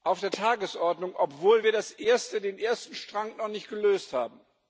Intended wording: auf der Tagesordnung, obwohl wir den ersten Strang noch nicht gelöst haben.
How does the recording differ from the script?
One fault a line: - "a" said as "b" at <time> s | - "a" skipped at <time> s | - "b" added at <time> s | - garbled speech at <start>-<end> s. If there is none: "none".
none